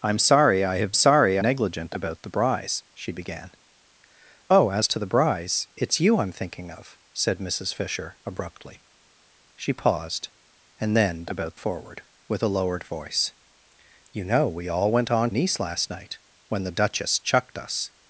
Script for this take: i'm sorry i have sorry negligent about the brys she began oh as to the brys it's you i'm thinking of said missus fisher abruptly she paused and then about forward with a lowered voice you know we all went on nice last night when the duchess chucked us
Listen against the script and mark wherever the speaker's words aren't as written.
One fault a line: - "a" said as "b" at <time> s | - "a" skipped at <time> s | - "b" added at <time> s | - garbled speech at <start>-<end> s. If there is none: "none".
none